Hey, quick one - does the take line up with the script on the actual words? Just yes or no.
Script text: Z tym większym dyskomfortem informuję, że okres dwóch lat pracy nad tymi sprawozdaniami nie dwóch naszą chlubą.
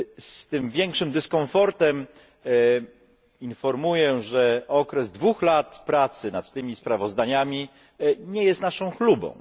no